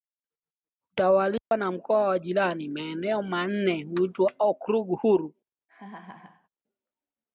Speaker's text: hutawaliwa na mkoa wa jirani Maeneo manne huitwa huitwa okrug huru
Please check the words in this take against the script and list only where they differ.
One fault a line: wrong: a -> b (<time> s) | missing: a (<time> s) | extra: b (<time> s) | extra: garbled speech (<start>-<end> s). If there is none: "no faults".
missing: huitwa (4.3 s)